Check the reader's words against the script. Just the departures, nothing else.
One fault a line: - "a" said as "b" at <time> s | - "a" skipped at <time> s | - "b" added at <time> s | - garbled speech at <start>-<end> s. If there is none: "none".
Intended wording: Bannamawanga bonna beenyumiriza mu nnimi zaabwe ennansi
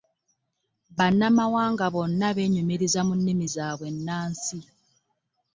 none